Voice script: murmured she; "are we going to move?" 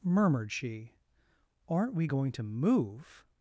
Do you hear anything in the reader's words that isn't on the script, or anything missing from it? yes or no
yes